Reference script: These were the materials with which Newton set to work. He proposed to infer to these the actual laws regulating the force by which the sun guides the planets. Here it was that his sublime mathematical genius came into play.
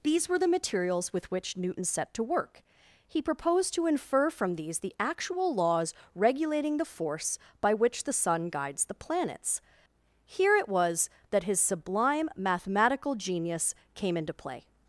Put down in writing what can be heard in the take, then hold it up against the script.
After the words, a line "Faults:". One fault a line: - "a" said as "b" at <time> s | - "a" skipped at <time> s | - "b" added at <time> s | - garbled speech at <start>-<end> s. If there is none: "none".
These were the materials with which Newton set to work. He proposed to infer from these the actual laws regulating the force by which the sun guides the planets. Here it was that his sublime mathematical genius came into play.
Faults:
- "to" said as "from" at 4.3 s